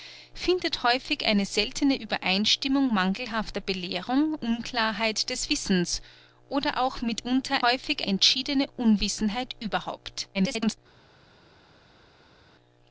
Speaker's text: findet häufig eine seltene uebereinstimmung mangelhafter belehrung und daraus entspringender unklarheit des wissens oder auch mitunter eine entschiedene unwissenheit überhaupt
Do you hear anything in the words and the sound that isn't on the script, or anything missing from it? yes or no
yes